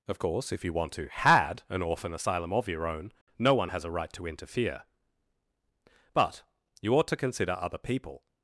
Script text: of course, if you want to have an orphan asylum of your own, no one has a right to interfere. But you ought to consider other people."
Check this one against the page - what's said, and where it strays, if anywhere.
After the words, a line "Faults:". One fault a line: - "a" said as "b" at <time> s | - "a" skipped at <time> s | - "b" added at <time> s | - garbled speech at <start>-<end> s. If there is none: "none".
of course, if you want to had an orphan asylum of your own, no one has a right to interfere. But you ought to consider other people."
Faults:
- "have" said as "had" at 1.1 s